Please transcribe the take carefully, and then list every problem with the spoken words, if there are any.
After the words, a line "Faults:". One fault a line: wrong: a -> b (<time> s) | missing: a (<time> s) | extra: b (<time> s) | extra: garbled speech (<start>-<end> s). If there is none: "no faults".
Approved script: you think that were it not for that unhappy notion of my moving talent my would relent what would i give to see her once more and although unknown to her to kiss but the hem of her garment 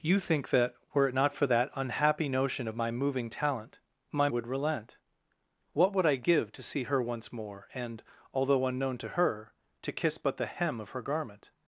you think that were it not for that unhappy notion of my moving talent my would relent what would i give to see her once more and although unknown to her to kiss but the hem of her garment
Faults:
no faults